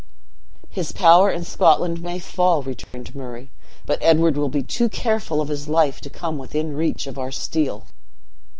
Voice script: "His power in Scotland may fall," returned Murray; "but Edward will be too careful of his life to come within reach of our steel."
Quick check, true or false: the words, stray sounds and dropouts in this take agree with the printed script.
false